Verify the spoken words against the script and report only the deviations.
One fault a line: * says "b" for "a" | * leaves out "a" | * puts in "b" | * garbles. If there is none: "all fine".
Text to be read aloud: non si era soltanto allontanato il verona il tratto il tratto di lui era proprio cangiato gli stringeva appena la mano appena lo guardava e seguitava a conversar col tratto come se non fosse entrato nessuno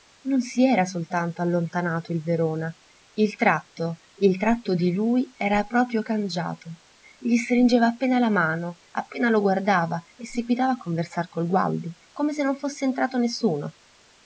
* says "gualdi" for "tratto"